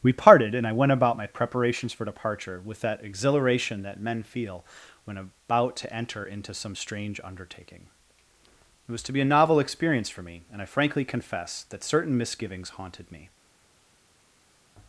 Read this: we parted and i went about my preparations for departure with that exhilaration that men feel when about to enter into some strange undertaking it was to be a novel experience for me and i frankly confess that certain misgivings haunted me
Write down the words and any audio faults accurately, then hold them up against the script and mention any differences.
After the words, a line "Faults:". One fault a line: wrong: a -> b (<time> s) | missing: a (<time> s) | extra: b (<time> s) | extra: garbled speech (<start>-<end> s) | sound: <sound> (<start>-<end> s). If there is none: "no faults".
we parted and i went about my preparations for departure with that exhilaration that men feel when about to enter into some strange undertaking it was to be a novel experience for me and i frankly confess that certain misgivings haunted me
Faults:
no faults